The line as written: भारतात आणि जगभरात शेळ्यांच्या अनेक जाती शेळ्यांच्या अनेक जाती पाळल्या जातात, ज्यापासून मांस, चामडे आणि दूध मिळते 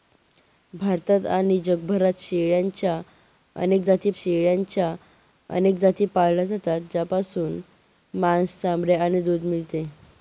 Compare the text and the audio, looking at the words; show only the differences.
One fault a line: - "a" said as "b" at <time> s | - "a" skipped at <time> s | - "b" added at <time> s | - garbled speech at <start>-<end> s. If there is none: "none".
none